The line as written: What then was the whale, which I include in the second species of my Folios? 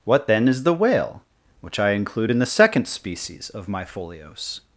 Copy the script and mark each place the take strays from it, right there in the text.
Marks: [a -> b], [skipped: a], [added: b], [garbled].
What then [was -> is] the whale, which I include in the second species of my Folios?